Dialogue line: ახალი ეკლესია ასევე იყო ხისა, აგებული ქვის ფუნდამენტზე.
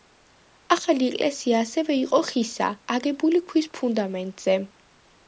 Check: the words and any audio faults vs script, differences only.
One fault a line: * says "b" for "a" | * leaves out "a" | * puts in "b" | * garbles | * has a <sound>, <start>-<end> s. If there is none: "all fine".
all fine